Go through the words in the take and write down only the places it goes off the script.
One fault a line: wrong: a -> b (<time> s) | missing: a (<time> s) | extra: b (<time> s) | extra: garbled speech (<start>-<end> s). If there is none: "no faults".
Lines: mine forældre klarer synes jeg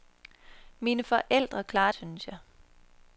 no faults